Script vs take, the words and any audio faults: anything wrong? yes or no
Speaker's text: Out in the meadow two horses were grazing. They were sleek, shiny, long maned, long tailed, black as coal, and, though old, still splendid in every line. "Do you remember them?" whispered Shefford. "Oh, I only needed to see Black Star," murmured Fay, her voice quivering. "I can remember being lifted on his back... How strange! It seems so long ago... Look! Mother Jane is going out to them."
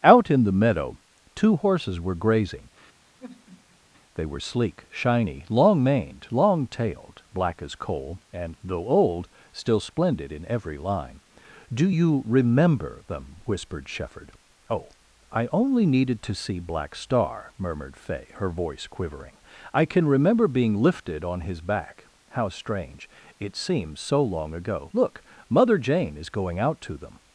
yes